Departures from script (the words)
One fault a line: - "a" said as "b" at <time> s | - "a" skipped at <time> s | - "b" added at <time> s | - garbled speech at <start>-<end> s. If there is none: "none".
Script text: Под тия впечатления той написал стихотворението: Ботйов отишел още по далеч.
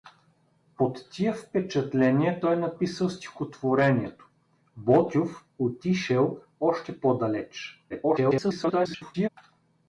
- garbled speech at 7.9-9.3 s